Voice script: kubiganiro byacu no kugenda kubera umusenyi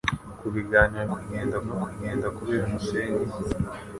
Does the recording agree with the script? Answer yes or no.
no